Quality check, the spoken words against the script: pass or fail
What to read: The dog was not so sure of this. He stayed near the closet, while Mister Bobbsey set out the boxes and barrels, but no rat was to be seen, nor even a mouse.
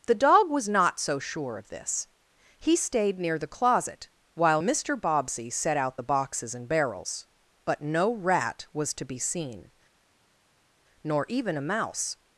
pass